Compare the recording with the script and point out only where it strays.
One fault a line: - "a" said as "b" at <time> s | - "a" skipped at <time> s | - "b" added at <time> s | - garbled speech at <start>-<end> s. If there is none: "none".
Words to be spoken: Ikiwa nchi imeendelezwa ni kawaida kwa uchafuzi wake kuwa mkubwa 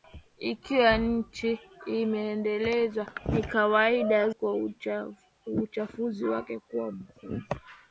none